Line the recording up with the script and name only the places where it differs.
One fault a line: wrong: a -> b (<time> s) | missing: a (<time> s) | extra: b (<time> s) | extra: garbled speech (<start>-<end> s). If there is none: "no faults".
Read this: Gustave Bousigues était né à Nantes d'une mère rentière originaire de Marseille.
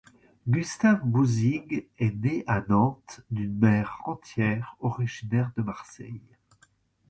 wrong: était -> est (2.0 s)